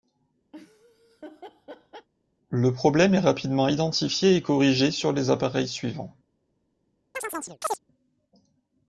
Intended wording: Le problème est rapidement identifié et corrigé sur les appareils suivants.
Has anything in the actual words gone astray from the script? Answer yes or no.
no